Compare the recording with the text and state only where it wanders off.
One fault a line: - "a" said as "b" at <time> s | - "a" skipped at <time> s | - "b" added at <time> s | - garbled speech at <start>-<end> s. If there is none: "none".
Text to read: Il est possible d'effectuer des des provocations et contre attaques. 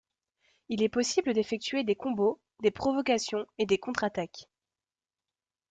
- "combos" added at 1.9 s
- "des" added at 3.7 s